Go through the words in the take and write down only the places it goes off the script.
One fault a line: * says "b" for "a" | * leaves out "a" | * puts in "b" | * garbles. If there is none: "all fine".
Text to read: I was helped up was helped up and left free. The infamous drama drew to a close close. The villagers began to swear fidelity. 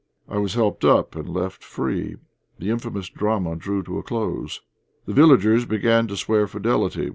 * leaves out "was helped up"
* leaves out "close"